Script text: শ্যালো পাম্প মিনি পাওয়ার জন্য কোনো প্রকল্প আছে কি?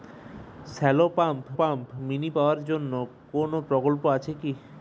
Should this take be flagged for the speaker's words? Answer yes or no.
yes